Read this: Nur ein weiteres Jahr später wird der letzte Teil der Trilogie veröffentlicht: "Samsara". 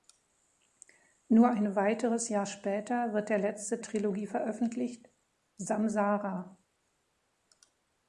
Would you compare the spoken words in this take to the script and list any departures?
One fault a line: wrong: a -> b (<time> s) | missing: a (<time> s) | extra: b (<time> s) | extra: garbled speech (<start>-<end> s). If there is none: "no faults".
missing: Teil der (3.8 s)